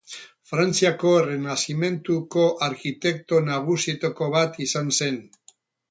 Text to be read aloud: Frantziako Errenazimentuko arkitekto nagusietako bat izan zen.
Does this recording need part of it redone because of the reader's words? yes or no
no